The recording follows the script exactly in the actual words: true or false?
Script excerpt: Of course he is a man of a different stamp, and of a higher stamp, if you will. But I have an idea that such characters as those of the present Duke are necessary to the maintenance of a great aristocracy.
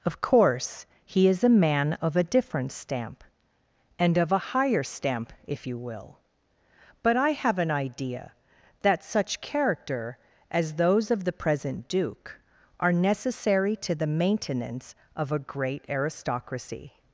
false